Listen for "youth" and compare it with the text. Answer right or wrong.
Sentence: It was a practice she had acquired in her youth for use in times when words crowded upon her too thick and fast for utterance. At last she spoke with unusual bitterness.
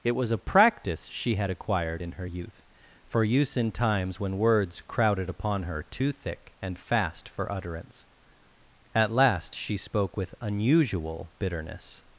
right